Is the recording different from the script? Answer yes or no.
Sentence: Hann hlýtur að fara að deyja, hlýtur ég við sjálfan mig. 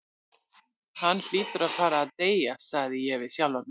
yes